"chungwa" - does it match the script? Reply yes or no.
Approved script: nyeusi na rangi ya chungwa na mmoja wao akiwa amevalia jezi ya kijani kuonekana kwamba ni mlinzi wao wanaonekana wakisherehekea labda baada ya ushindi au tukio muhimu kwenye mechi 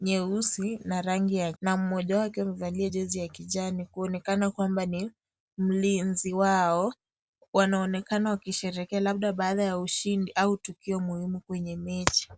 no